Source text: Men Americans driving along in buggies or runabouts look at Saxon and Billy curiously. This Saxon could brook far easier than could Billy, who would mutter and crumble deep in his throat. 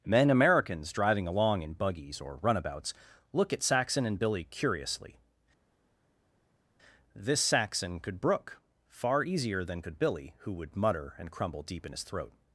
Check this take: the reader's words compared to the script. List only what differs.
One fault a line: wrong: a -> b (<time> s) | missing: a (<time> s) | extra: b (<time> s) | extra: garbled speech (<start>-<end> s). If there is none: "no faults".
no faults